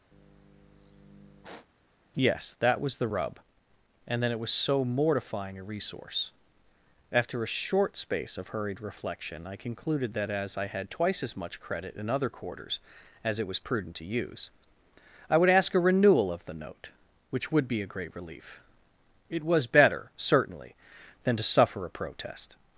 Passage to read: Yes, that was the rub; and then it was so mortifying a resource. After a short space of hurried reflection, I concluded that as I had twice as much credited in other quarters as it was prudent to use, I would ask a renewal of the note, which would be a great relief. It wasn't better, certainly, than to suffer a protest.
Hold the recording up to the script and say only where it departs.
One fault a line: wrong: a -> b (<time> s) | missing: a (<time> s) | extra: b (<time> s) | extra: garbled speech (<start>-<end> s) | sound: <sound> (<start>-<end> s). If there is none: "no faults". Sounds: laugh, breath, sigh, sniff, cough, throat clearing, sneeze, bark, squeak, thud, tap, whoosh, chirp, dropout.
sound: sigh (0.1-1.7 s)
wrong: credited -> credit (11.6 s)
wrong: wasn't -> was (19.4 s)